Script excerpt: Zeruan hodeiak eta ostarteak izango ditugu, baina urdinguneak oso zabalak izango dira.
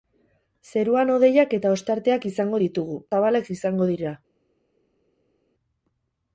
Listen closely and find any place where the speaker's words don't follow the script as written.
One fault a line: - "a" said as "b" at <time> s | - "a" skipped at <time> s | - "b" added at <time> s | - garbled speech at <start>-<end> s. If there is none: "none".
- "baina urdinguneak oso" skipped at 3.0 s